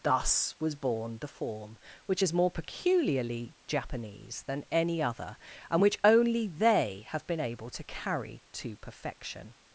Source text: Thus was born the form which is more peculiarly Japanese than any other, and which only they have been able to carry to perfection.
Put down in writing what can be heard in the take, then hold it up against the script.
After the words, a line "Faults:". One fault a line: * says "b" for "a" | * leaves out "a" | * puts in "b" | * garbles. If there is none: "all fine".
Thus was born the form which is more peculiarly Japanese than any other, and which only they have been able to carry to perfection.
Faults:
all fine